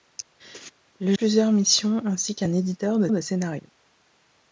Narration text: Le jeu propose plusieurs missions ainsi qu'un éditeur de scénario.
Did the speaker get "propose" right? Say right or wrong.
wrong